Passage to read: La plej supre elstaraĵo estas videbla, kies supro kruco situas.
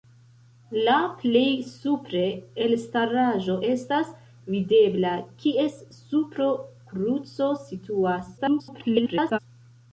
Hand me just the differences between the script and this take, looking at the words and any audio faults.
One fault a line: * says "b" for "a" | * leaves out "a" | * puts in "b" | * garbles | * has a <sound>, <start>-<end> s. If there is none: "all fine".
* garbles